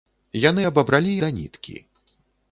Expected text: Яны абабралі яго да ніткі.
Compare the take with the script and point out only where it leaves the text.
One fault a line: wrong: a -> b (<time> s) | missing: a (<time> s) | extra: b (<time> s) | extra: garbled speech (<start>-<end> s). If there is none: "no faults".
missing: яго (1.2 s)